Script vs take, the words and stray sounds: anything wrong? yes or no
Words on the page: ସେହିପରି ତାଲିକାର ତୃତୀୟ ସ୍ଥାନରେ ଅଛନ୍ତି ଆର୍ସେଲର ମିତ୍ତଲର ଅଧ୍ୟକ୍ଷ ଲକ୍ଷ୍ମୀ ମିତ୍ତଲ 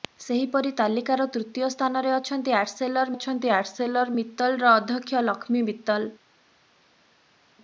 yes